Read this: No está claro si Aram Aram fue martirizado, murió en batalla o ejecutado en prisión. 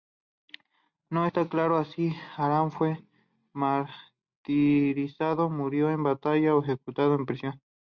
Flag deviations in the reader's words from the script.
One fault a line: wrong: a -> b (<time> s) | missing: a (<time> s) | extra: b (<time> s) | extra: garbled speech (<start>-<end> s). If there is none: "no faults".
missing: Aram (2.7 s)